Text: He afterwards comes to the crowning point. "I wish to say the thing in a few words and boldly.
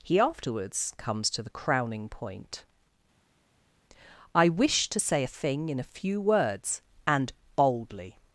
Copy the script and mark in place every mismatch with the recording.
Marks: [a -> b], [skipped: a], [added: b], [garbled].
He afterwards comes to the crowning point. "I wish to say [the -> a] thing in a few words and boldly.